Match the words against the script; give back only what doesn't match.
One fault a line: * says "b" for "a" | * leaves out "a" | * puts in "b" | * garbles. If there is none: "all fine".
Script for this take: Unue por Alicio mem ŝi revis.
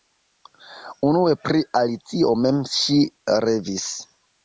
* says "pri" for "por"